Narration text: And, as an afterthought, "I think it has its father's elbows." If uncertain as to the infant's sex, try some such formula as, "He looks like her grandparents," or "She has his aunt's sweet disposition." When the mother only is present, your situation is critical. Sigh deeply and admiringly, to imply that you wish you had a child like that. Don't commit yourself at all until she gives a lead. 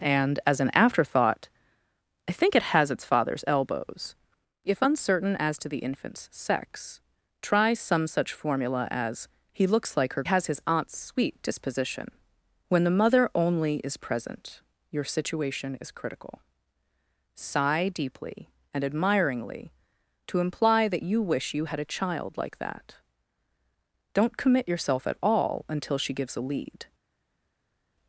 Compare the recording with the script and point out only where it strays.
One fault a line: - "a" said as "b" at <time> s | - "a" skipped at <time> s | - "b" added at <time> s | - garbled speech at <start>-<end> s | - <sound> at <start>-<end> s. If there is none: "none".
- "grandparents or She" skipped at 10.2 s